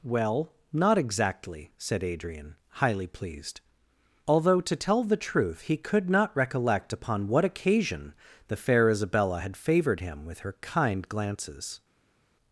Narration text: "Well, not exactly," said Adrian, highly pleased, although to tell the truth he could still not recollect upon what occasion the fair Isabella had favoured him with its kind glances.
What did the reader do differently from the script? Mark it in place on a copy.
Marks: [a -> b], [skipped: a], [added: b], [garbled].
"Well, not exactly," said Adrian, highly pleased, although to tell the truth he could [skipped: still] not recollect upon what occasion the fair Isabella had favoured him with [its -> her] kind glances.